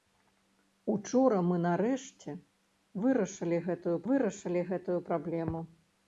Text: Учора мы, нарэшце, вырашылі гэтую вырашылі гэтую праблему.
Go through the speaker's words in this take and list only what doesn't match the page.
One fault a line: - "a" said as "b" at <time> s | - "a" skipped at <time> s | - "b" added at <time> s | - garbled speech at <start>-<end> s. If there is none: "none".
none